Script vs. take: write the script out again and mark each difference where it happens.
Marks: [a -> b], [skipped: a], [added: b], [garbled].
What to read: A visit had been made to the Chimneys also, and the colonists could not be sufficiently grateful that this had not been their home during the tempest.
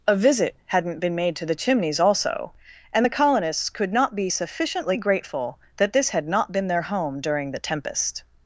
A visit [had -> hadn't] been made to the Chimneys also, and the colonists could not be sufficiently grateful that this had not been their home during the tempest.